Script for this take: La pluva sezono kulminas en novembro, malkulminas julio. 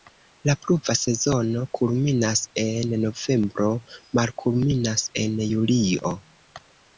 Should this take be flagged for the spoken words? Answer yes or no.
yes